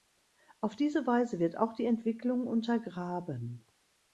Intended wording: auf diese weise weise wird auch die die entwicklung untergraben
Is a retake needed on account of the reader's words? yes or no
yes